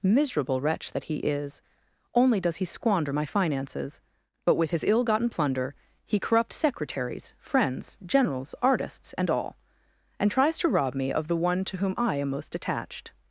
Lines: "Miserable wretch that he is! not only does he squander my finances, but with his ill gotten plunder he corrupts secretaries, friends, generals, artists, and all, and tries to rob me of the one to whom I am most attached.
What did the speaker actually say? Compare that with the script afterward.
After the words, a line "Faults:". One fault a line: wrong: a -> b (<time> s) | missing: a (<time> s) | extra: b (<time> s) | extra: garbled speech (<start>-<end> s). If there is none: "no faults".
"Miserable wretch that he is! only does he squander my finances, but with his ill gotten plunder he corrupts secretaries, friends, generals, artists, and all, and tries to rob me of the one to whom I am most attached.
Faults:
missing: not (1.6 s)